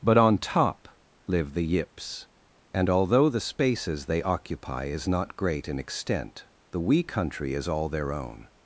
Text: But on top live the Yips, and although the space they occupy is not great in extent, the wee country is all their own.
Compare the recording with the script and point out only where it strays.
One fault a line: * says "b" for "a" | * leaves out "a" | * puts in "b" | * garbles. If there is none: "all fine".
* says "spaces" for "space"